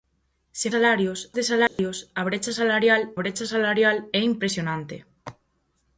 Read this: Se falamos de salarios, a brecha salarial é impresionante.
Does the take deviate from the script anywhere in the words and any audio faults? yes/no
yes